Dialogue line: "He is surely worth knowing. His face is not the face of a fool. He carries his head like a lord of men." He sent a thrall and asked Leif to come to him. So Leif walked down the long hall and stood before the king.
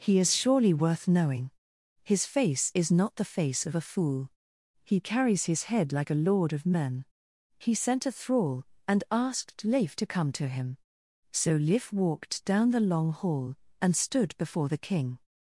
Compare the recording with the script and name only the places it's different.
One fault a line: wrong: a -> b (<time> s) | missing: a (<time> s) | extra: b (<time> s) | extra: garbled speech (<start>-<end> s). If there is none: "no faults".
no faults